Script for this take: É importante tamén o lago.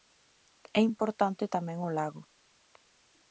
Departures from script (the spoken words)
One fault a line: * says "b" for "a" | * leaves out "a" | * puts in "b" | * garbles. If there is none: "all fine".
all fine